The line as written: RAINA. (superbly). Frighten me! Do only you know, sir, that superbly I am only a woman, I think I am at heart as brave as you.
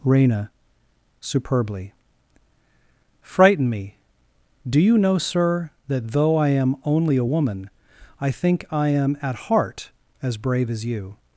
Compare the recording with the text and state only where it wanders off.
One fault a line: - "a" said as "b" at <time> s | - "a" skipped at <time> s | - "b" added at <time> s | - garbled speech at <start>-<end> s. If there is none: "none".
- "only" skipped at 4.8 s
- "superbly" said as "though" at 6.1 s